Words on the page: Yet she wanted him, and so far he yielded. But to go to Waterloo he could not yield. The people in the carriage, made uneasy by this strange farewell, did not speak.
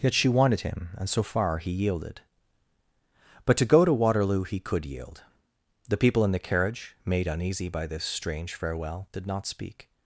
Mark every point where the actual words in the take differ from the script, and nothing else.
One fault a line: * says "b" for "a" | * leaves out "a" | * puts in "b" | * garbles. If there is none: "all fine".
* leaves out "not"